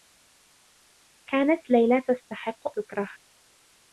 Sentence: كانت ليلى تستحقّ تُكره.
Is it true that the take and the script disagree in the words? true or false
false